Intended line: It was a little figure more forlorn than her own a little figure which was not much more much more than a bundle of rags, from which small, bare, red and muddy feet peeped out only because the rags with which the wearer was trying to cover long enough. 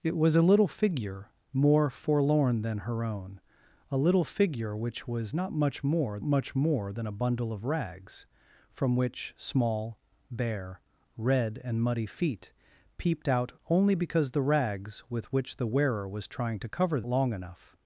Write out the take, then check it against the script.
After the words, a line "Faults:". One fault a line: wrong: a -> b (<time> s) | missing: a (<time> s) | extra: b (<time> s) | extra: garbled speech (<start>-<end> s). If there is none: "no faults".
It was a little figure more forlorn than her own a little figure which was not much more much more than a bundle of rags, from which small, bare, red and muddy feet peeped out only because the rags with which the wearer was trying to cover long enough.
Faults:
no faults